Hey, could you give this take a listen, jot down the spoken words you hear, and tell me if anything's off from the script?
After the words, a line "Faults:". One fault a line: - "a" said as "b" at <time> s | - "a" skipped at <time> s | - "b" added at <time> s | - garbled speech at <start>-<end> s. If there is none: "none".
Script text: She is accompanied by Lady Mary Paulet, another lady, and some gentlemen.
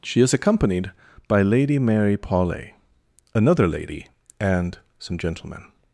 She is accompanied by Lady Mary Paulet, another lady, and some gentlemen.
Faults:
none